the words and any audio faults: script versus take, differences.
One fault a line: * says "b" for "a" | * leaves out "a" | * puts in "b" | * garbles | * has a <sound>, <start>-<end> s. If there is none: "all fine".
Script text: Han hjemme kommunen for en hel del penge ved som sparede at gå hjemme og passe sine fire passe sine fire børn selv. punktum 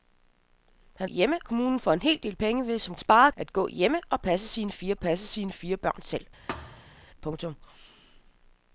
* has a thud, 6.5-7.0 s